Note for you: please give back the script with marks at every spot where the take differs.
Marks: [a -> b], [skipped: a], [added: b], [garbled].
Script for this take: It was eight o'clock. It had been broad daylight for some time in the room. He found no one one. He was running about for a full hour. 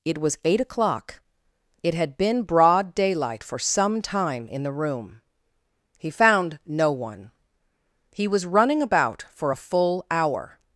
It was eight o'clock. It had been broad daylight for some time in the room. He found no one [skipped: one.] He was running about for a full hour.